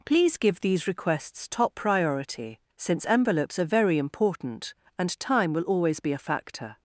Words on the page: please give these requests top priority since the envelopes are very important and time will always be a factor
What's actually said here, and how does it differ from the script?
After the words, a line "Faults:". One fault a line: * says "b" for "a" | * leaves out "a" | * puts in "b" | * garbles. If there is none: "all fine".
please give these requests top priority since envelopes are very important and time will always be a factor
Faults:
* leaves out "the"